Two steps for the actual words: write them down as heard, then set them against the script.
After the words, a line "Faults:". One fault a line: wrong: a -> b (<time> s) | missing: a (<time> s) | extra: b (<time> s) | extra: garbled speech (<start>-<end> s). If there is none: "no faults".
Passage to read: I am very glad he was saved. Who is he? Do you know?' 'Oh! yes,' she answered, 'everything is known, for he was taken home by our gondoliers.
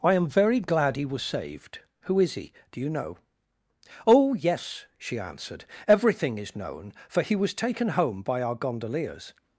I am very glad he was saved. Who is he? Do you know?' 'Oh! yes,' she answered, 'everything is known, for he was taken home by our gondoliers.
Faults:
no faults